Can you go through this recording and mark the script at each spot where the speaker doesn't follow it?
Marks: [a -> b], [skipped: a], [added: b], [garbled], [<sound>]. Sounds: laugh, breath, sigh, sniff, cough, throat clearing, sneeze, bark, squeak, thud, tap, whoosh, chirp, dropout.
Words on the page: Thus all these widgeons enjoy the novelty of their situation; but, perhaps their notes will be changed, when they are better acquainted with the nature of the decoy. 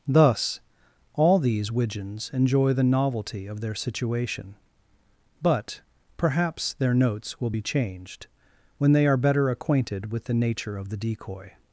Thus all these widgeons enjoy the novelty of their situation; but, perhaps their notes will be changed, when they are better acquainted with the nature of the decoy.